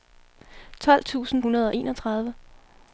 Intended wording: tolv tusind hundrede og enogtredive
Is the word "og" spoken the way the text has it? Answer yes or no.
yes